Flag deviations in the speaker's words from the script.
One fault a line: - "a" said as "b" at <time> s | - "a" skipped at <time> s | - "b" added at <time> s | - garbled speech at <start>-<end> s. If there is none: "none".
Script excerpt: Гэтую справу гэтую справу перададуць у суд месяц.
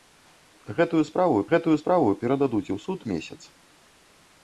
none